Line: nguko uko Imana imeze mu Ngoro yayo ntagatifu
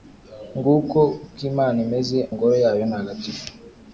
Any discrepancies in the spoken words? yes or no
yes